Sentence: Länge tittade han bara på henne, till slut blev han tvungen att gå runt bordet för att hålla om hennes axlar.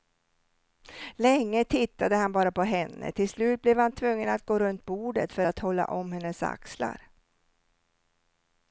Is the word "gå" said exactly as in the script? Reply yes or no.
yes